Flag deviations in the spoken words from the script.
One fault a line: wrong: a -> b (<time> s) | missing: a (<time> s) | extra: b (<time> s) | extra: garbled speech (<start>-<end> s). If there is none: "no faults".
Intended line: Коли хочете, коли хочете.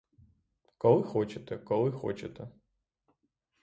no faults